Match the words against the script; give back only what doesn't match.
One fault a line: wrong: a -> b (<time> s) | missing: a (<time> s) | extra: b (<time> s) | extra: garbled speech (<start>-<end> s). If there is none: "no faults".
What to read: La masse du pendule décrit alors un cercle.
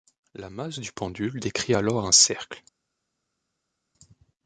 no faults